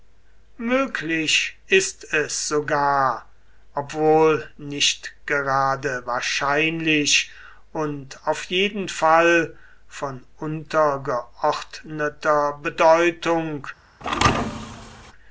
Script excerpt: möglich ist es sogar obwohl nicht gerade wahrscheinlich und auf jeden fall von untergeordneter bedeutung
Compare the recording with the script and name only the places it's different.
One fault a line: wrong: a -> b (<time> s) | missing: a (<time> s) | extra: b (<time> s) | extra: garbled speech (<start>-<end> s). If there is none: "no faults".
no faults